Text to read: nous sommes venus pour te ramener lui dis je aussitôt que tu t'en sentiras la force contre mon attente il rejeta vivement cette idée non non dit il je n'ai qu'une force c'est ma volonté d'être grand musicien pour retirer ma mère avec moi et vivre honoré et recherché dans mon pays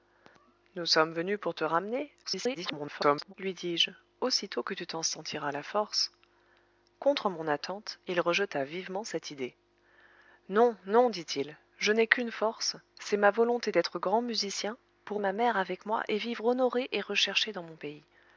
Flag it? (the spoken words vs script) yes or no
yes